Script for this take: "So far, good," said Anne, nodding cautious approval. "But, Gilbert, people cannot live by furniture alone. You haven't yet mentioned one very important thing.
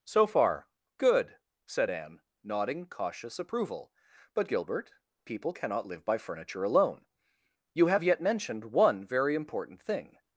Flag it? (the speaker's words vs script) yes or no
yes